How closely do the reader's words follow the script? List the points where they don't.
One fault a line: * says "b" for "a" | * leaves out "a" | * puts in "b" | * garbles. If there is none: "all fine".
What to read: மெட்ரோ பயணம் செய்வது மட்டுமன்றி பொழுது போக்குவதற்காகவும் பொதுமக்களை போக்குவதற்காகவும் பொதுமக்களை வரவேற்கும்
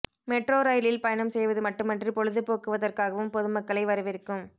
* puts in "ரயிலில்"
* leaves out "போக்குவதற்காகவும் பொதுமக்களை"